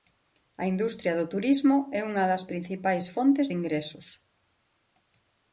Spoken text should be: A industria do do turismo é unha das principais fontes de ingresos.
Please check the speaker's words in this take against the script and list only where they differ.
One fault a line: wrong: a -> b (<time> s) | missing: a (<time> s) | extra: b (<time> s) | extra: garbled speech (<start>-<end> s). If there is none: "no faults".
missing: do (1.3 s)